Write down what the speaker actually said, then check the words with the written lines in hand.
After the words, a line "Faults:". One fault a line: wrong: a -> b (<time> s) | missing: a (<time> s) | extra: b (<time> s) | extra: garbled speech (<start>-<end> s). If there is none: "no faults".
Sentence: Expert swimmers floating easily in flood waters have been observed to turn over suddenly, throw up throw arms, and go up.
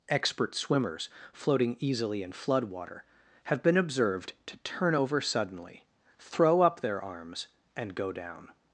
Expert swimmers floating easily in flood water have been observed to turn over suddenly, throw up their arms, and go down.
Faults:
wrong: waters -> water (2.6 s)
wrong: throw -> their (6.8 s)
wrong: up -> down (8.1 s)